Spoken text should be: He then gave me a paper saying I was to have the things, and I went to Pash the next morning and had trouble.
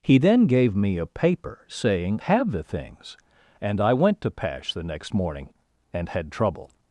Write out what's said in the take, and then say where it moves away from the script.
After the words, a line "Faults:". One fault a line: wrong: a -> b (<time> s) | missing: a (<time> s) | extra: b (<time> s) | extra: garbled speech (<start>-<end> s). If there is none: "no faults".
He then gave me a paper saying have the things, and I went to Pash the next morning and had trouble.
Faults:
missing: I was to (2.2 s)